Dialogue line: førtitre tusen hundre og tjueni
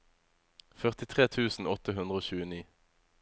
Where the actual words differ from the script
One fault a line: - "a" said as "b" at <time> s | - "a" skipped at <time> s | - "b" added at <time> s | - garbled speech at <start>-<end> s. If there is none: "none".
- "åtte" added at 1.7 s